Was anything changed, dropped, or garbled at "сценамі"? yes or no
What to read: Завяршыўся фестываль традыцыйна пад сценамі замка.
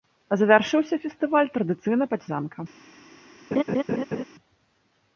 yes